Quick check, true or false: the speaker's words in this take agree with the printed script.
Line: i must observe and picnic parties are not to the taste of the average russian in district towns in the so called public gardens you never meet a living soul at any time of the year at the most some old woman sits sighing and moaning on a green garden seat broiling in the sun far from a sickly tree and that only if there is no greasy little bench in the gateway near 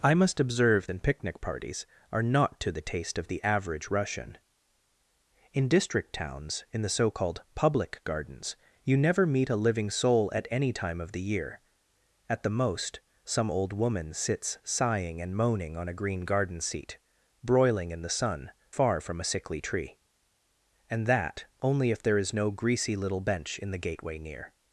true